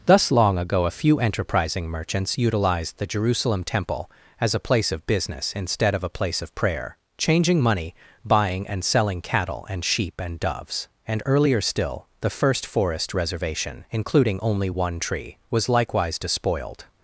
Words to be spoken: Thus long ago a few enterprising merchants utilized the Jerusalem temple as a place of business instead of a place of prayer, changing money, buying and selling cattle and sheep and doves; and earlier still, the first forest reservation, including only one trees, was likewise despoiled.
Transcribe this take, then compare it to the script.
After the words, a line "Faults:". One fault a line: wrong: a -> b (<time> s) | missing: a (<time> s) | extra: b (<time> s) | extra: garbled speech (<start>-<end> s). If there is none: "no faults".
Thus long ago a few enterprising merchants utilized the Jerusalem temple as a place of business instead of a place of prayer, changing money, buying and selling cattle and sheep and doves; and earlier still, the first forest reservation, including only one tree, was likewise despoiled.
Faults:
wrong: trees -> tree (15.0 s)